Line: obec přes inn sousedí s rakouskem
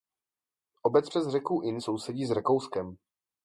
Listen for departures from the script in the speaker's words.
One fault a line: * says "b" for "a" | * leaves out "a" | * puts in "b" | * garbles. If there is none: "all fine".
* puts in "řeku"